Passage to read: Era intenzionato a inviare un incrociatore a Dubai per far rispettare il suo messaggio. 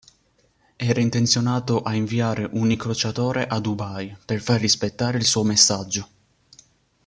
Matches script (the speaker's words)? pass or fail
pass